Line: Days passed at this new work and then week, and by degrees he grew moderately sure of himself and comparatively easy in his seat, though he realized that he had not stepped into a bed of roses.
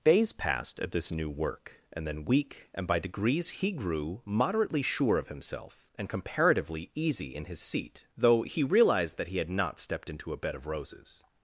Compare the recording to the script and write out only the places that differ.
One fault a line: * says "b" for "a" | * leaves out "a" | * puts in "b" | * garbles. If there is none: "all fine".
all fine